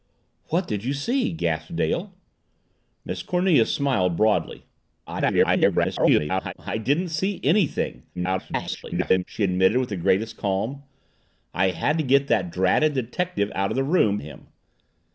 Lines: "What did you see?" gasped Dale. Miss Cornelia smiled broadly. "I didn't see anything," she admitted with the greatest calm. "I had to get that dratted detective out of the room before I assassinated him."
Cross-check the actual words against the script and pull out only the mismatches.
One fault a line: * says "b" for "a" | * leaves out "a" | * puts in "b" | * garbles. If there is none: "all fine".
* garbles
* garbles
* leaves out "before I assassinated"